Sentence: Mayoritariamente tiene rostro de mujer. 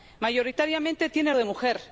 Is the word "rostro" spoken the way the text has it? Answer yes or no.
no